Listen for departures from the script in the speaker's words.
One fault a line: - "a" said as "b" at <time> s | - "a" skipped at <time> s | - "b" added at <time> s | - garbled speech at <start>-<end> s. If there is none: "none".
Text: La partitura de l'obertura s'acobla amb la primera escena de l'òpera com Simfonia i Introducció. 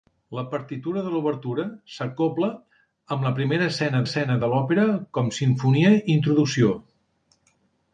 - "escena" added at 4.1 s